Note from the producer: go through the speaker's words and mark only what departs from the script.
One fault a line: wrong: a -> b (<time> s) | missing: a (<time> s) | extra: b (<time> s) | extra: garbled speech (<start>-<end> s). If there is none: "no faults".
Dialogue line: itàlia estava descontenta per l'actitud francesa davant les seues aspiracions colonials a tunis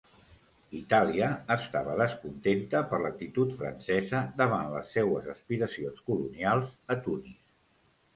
no faults